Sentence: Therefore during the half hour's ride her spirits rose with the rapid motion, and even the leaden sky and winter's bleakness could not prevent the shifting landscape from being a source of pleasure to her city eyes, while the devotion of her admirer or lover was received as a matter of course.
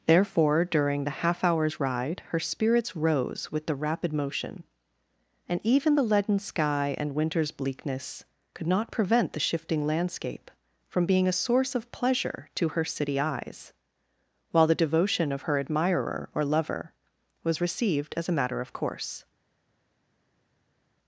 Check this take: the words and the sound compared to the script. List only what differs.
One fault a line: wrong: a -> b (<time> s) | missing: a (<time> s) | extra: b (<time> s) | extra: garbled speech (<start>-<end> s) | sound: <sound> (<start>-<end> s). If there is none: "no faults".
no faults